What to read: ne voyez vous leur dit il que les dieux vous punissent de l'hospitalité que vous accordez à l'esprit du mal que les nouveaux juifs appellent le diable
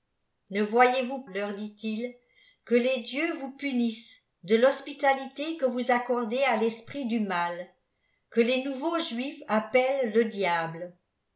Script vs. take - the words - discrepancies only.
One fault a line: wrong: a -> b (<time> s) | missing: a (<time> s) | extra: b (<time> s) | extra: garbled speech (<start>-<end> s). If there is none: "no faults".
no faults